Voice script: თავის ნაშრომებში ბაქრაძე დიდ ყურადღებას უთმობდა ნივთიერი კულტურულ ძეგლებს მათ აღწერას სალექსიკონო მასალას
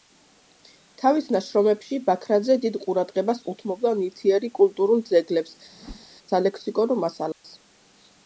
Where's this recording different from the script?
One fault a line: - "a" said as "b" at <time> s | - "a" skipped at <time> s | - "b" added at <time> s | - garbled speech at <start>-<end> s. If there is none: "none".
- "მათ აღწერას" skipped at 5.5 s